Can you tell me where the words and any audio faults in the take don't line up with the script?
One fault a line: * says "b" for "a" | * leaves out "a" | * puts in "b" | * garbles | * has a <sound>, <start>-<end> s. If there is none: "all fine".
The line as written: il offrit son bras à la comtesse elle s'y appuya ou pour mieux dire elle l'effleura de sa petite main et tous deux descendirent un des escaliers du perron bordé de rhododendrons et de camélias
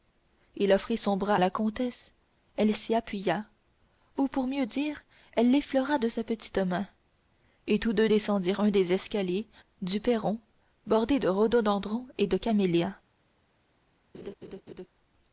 * leaves out "à"
* has a laugh, 14.1-14.9 s